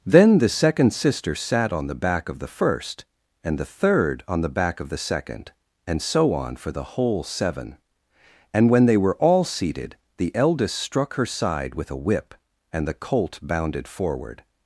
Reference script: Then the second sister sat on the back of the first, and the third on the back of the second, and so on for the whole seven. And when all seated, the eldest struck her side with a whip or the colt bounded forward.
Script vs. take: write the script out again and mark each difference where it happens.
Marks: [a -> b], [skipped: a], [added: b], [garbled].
Then the second sister sat on the back of the first, and the third on the back of the second, and so on for the whole seven. And when [added: they were] all seated, the eldest struck her side with a whip [or -> and] the colt bounded forward.